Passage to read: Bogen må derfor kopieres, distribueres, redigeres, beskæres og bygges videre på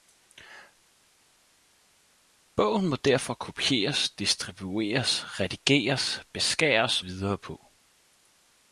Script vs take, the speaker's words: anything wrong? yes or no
yes